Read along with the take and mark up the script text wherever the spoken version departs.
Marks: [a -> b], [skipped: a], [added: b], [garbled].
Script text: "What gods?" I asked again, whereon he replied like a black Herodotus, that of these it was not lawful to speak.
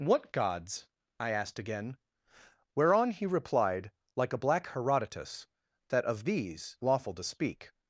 "What gods?" I asked again, whereon he replied like a black Herodotus, that of these [skipped: it was not] lawful to speak.